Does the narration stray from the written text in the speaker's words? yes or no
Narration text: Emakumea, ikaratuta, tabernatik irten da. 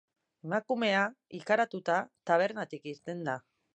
no